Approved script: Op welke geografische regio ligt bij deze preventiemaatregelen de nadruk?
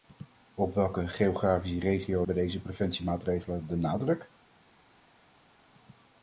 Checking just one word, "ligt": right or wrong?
wrong